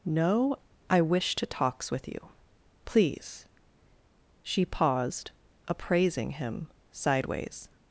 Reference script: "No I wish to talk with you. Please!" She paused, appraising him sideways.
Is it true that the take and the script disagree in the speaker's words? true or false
true